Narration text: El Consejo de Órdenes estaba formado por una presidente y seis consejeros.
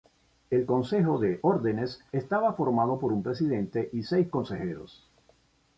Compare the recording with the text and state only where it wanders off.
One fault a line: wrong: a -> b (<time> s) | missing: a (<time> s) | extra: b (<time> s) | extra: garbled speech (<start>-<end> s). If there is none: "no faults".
wrong: una -> un (3.1 s)